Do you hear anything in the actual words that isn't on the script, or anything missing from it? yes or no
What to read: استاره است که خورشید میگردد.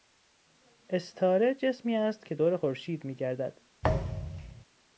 yes